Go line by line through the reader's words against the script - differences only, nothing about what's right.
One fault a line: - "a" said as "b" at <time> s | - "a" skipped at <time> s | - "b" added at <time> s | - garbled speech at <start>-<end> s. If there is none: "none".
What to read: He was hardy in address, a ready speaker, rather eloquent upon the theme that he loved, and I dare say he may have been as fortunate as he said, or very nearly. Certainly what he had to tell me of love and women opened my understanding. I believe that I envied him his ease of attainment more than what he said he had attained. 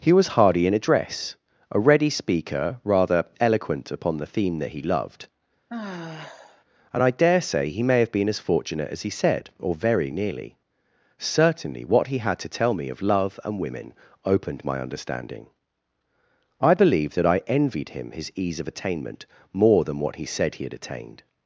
none